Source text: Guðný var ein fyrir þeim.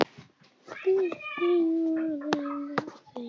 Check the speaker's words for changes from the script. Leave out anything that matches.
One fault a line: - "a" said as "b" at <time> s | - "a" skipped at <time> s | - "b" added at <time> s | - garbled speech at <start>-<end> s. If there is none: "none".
- "fyrir" said as "af" at 2.8 s